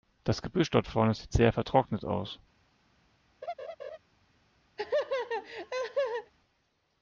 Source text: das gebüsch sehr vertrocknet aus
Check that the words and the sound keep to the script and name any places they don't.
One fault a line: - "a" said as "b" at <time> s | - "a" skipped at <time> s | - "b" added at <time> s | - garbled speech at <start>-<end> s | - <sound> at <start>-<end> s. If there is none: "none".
- "dort vorne sieht" added at 0.7 s
- laugh at 3.4-4.0 s
- laugh at 4.8-6.3 s